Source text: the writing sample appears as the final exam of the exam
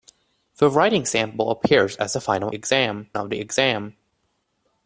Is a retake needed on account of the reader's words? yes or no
no